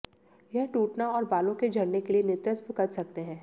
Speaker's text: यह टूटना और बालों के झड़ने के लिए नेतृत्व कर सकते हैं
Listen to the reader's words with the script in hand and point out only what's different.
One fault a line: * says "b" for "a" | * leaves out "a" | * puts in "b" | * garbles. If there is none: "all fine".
all fine